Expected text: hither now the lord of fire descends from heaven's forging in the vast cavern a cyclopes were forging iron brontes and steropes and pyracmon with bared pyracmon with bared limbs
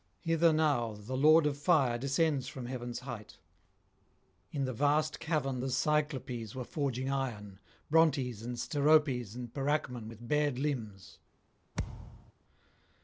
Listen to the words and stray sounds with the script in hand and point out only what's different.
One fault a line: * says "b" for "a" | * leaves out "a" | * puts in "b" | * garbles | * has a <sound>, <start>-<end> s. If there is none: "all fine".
* says "height" for "forging"
* says "the" for "a"
* leaves out "pyracmon with bared"
* has a thud, 11.7-12.3 s